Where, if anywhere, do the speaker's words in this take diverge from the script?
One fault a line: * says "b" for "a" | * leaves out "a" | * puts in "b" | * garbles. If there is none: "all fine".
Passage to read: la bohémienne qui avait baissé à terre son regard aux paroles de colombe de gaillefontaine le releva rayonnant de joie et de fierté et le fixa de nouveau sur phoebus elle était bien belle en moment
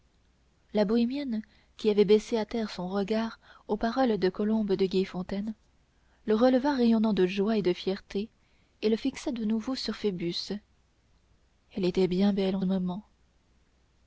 all fine